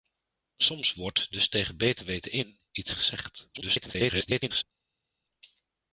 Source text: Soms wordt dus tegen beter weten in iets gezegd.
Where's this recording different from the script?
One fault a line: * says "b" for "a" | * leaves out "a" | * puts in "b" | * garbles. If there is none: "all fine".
* garbles